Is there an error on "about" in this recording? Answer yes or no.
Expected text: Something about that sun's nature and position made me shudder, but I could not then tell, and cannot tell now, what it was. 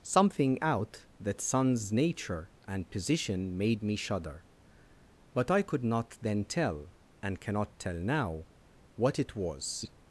yes